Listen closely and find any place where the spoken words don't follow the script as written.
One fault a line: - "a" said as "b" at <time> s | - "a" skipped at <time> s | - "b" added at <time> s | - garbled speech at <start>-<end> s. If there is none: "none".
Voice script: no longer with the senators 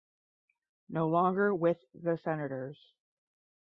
none